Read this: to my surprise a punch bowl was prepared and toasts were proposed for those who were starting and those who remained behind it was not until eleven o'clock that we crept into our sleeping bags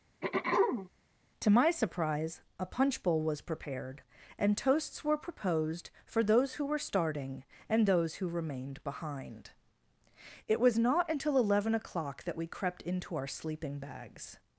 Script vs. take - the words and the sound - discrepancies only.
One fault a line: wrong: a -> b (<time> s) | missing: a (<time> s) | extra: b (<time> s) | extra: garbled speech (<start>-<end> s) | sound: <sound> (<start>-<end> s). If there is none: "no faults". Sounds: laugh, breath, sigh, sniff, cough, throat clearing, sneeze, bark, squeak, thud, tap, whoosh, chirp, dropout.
sound: throat clearing (0.2-0.9 s)